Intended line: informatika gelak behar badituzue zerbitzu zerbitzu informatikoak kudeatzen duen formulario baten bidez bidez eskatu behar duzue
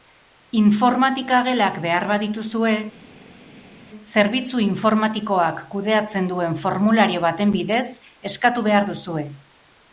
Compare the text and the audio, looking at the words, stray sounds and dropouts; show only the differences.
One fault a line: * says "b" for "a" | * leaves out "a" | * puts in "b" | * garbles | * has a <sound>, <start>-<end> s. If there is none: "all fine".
* leaves out "zerbitzu"
* leaves out "bidez"